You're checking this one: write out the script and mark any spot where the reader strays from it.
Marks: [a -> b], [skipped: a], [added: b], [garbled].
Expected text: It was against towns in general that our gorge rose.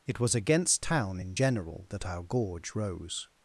It was against [towns -> town] in general that our gorge rose.